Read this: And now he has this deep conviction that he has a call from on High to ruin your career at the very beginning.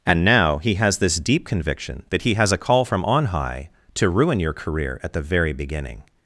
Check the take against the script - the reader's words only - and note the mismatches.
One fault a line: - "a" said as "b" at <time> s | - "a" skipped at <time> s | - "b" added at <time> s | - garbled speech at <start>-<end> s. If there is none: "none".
none